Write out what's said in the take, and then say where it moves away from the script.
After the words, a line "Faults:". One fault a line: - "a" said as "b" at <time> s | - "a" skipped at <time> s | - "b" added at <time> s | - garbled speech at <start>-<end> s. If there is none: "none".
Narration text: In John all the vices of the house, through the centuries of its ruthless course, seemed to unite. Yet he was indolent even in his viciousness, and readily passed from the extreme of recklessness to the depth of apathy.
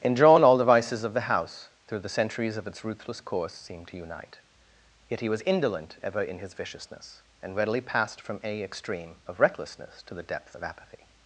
In John all the vices of the house, through the centuries of its ruthless course, seemed to unite. Yet he was indolent ever in his viciousness, and readily passed from a extreme of recklessness to the depth of apathy.
Faults:
- "even" said as "ever" at 6.0 s
- "the" said as "a" at 8.4 s